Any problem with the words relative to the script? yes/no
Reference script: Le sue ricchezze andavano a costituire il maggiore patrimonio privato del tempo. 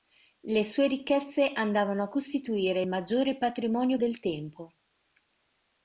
yes